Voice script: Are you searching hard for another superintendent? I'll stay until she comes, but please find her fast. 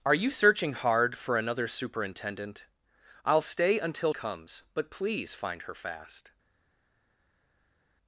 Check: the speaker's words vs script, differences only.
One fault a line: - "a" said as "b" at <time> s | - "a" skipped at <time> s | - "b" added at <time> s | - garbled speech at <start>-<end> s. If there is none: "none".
- "she" skipped at 4.1 s